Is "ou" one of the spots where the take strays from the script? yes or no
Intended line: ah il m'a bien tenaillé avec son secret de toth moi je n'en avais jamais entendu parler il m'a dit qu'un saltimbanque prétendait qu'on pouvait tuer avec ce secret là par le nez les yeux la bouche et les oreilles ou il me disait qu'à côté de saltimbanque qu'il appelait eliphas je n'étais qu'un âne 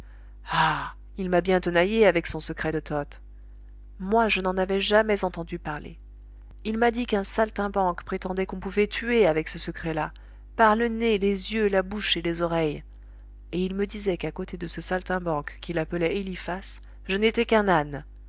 yes